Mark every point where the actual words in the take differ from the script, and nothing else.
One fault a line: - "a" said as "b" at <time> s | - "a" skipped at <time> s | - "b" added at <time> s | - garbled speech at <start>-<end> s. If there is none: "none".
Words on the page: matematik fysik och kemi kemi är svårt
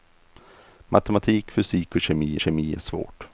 none